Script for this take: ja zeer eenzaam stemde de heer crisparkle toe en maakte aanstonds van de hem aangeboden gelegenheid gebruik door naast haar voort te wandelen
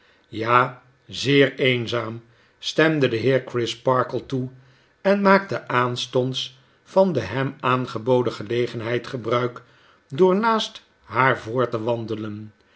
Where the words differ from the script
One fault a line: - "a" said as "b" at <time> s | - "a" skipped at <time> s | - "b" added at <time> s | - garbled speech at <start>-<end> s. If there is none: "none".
none